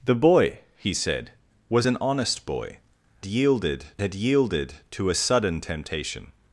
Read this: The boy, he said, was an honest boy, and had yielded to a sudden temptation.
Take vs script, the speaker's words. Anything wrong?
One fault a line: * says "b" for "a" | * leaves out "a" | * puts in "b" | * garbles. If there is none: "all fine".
* says "yielded" for "and"